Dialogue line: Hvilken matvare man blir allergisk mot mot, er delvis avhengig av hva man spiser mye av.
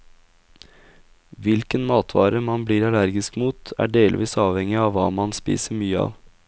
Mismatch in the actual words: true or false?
true